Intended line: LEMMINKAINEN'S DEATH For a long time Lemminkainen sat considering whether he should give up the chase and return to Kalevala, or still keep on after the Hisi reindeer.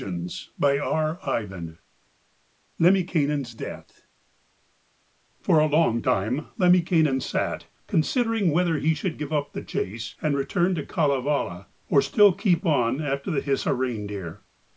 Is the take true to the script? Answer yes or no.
yes